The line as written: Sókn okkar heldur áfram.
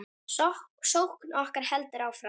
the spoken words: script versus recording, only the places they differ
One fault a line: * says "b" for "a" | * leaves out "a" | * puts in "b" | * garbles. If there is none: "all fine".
all fine